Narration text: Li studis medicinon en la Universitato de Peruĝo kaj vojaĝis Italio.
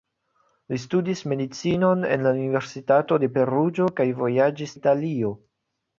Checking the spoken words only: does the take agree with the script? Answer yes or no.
yes